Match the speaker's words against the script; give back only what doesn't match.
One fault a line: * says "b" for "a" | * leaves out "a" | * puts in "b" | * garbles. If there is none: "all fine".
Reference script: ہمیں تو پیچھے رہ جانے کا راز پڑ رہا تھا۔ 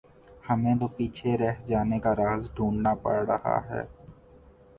* puts in "ڈھونڈنا"
* says "ہے" for "تھا"